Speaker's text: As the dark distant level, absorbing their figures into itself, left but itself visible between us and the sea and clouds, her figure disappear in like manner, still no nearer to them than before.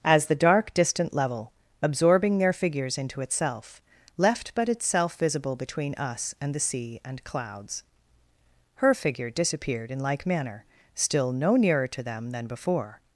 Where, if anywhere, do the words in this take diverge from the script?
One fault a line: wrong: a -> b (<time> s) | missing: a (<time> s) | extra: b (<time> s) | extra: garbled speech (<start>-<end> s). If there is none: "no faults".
wrong: disappear -> disappeared (9.3 s)